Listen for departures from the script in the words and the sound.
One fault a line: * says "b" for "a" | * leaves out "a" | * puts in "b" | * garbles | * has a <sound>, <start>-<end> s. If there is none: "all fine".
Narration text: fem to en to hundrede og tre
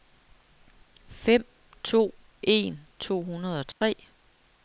* has a dropout, 3.7-3.8 s